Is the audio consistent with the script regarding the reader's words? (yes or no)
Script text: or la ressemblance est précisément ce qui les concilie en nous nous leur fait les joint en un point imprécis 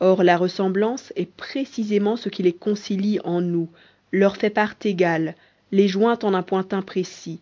no